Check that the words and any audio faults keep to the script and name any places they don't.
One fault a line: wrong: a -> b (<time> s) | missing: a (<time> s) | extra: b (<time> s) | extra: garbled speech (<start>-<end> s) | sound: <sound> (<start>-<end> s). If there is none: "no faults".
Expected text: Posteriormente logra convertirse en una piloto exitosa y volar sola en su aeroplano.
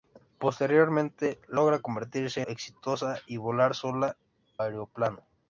missing: en una piloto (2.4 s)
missing: en su (4.2 s)